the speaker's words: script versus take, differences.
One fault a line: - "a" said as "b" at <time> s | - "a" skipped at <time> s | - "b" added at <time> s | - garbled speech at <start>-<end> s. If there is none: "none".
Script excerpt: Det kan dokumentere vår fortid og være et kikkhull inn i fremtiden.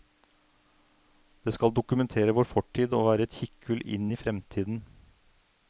- "kan" said as "skal" at 1.6 s